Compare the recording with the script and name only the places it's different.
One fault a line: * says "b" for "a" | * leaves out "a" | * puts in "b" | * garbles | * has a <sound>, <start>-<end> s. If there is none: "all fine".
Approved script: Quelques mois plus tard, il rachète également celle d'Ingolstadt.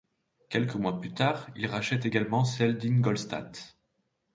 all fine